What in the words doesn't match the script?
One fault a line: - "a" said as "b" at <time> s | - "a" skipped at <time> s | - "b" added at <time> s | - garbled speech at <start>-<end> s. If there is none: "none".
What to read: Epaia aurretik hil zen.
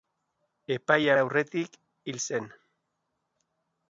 none